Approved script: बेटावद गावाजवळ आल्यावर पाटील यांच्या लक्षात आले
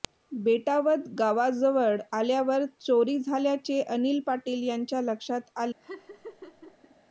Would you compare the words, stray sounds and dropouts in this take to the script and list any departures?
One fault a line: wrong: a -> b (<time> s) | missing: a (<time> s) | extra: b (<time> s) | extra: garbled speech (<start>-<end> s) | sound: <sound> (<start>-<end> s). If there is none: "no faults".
extra: चोरी झाल्याचे अनिल (2.8 s)
sound: laugh (5.8-6.9 s)